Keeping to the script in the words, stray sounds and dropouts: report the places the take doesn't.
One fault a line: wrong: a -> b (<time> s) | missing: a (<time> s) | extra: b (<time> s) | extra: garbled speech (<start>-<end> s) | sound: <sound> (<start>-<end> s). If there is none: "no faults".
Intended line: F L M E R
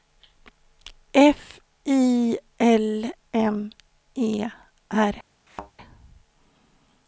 extra: I (1.9 s)
sound: thud (5.5-5.7 s)